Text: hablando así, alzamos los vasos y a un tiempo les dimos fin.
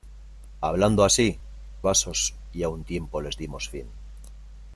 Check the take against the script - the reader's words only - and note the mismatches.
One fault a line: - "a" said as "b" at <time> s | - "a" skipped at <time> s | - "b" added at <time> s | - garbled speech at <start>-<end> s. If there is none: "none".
- "alzamos los" skipped at 1.4 s